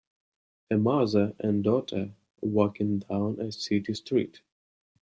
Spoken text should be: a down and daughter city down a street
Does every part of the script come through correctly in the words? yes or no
no